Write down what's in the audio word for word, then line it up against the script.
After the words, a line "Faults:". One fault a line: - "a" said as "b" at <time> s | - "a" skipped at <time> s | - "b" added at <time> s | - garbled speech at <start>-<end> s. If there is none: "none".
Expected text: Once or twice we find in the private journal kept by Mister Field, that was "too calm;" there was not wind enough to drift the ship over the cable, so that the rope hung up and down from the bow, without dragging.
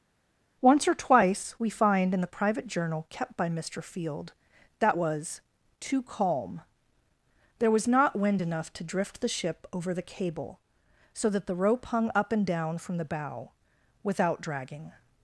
Once or twice we find in the private journal kept by Mister Field, that was "too calm;" there was not wind enough to drift the ship over the cable, so that the rope hung up and down from the bow, without dragging.
Faults:
none